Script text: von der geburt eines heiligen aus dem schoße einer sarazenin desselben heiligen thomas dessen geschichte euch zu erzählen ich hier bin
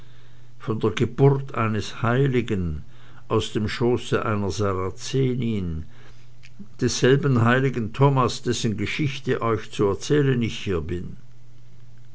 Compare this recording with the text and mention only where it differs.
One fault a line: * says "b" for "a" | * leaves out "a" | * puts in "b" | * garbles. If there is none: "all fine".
all fine